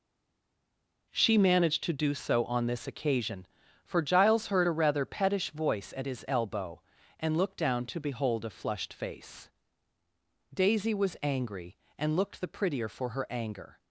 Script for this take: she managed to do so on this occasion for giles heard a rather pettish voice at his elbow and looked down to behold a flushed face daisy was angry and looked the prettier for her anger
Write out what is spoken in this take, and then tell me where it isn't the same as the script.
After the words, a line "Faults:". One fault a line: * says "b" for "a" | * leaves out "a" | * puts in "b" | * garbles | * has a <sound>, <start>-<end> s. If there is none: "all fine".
she managed to do so on this occasion for giles heard a rather pettish voice at his elbow and looked down to behold a flushed face daisy was angry and looked the prettier for her anger
Faults:
all fine